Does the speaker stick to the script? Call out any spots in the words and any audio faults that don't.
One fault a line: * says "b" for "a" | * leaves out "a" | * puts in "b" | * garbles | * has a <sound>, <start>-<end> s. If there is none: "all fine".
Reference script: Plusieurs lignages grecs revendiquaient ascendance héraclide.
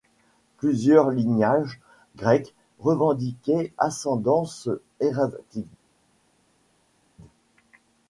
all fine